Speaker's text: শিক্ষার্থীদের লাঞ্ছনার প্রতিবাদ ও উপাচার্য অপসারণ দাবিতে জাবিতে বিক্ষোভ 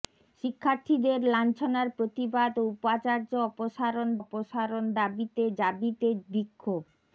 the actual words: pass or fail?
fail